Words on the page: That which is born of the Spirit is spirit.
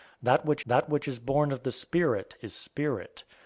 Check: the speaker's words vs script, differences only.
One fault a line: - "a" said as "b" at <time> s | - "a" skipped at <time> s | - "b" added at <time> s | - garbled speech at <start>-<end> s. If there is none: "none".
- "that which" added at 0.7 s